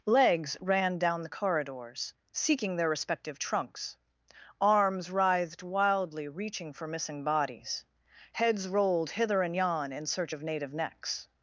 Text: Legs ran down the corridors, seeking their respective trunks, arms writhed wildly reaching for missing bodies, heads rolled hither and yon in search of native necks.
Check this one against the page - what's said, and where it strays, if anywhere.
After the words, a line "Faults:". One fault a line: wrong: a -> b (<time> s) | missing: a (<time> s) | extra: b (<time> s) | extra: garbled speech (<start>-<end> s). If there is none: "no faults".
Legs ran down the corridors, seeking their respective trunks, arms writhed wildly reaching for missing bodies, heads rolled hither and yon in search of native necks.
Faults:
no faults